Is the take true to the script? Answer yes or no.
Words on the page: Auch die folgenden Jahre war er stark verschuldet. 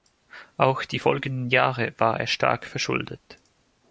yes